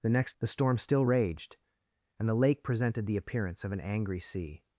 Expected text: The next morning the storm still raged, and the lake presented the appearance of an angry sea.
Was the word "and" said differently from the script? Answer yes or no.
no